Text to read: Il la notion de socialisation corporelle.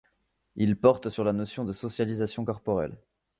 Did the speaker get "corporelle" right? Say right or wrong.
right